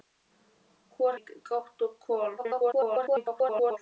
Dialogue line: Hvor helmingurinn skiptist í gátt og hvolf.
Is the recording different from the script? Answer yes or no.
yes